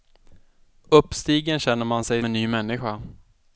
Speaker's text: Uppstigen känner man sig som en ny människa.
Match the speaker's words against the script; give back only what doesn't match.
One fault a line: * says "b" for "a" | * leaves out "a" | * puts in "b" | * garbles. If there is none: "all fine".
* leaves out "som"